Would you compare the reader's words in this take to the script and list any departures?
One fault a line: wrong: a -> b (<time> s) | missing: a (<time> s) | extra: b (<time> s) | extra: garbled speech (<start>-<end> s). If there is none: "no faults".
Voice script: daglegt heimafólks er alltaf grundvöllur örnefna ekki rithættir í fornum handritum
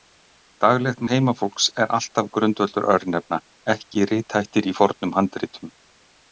no faults